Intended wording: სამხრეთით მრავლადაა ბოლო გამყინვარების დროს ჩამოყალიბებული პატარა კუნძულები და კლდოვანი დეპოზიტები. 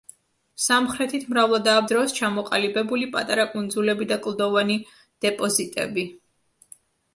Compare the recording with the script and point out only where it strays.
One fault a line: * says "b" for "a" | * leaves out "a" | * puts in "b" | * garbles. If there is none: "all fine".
* leaves out "ბოლო გამყინვარების"